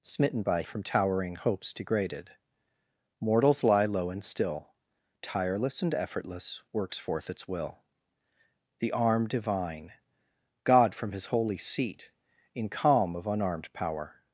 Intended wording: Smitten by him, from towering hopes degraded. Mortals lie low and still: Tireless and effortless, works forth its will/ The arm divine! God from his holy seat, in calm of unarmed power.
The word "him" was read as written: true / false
false